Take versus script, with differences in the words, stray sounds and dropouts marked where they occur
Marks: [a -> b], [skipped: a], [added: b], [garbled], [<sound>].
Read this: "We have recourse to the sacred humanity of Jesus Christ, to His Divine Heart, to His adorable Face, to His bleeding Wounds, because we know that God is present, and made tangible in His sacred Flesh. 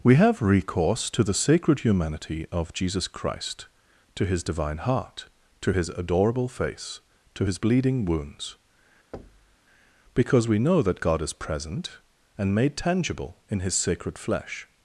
"We have recourse to the sacred humanity of Jesus Christ, to His Divine Heart, to His adorable Face, to His bleeding Wounds, [thud] because we know that God is present, and made tangible in His sacred Flesh.